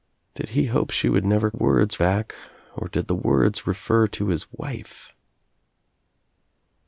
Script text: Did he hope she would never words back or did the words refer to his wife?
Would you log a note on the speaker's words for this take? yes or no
no